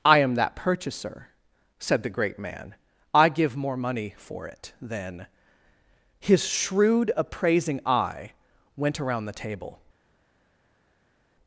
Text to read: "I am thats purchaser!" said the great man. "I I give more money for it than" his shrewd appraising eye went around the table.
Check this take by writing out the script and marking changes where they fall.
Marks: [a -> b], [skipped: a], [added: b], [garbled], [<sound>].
"I am [thats -> that] purchaser!" said the great man. "I [skipped: I] give more money for it than" his shrewd appraising eye went around the table.